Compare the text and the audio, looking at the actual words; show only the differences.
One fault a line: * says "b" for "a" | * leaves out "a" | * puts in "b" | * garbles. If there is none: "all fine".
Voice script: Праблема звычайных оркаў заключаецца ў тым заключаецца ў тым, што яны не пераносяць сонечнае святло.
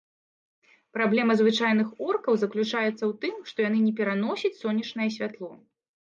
* leaves out "заключаецца ў тым"